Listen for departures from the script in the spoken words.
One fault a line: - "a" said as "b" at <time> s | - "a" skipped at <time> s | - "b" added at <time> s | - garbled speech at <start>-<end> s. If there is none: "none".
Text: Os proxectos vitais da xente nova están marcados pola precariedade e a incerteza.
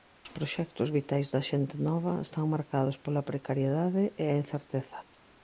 none